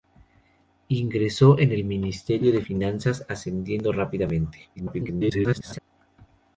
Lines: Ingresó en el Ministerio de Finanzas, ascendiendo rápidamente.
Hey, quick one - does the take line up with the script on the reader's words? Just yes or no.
no